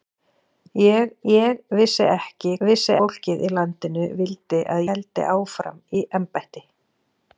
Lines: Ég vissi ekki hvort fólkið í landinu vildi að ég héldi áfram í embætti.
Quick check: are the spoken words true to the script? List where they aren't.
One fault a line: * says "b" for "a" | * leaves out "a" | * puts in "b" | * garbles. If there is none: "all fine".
* puts in "ég"
* says "vissi" for "hvort"
* leaves out "ég"